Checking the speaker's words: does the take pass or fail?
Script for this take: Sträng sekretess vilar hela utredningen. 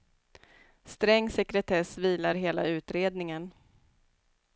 pass